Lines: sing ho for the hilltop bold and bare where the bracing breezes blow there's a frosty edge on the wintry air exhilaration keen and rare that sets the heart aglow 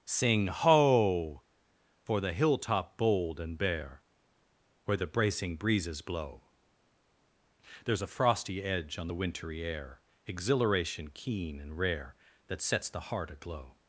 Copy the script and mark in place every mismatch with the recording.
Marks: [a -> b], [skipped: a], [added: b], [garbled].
sing ho for the hilltop bold and bare where the bracing breezes blow there's a frosty edge on the wintry air exhilaration keen and rare that sets the heart aglow